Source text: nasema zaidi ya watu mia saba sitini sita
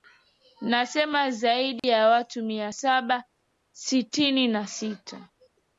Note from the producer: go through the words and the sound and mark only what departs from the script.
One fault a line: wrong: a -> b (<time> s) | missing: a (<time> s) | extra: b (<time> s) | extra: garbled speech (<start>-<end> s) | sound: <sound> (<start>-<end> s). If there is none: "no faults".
sound: dropout (1.8-1.8 s)
extra: na (4.5 s)